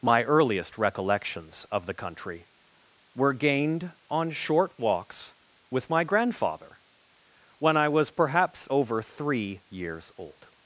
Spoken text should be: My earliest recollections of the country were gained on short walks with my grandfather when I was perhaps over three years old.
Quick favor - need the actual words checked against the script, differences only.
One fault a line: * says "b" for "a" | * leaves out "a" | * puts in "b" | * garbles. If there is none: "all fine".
all fine